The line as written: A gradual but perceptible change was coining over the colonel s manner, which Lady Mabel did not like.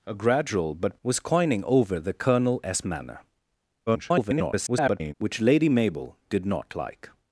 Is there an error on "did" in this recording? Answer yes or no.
no